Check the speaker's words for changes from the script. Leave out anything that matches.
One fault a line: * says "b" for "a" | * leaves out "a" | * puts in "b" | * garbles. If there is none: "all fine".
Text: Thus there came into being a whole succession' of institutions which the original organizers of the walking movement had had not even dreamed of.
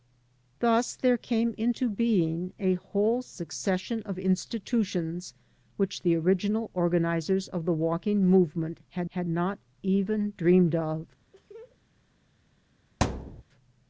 all fine